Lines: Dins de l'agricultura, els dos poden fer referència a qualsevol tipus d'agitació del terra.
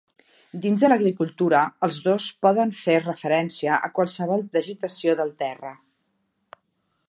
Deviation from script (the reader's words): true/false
true